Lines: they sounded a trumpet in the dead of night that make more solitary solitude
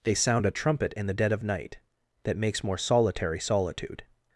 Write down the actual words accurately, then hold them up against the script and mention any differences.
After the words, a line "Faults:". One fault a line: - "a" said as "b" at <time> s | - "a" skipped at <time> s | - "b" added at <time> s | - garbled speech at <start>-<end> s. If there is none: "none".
they sound a trumpet in the dead of night that makes more solitary solitude
Faults:
- "sounded" said as "sound" at 0.1 s
- "make" said as "makes" at 2.4 s